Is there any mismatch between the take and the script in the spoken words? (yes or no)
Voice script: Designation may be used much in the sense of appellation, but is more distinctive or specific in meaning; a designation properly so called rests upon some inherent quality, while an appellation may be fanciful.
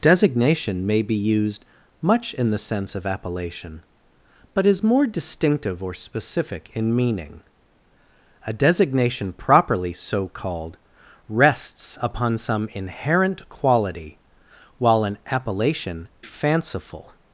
yes